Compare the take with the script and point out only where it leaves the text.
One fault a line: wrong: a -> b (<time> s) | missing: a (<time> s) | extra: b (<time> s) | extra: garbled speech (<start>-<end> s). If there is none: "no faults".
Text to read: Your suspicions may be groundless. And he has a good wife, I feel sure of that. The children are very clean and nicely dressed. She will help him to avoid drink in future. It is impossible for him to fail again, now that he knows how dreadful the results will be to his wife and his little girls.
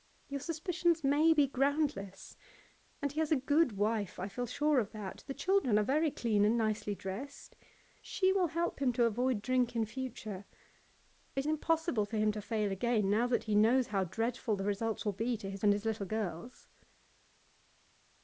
missing: is (11.5 s)
missing: wife (15.6 s)